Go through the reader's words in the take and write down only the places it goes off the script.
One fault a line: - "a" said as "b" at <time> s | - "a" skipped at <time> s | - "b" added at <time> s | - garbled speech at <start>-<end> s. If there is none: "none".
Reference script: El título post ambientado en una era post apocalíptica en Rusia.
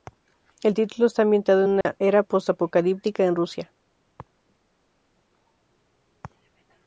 - "post" said as "está" at 1.1 s